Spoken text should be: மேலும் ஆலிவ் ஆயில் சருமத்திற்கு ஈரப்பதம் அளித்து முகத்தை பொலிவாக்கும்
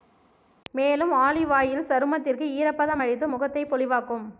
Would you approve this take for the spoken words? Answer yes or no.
yes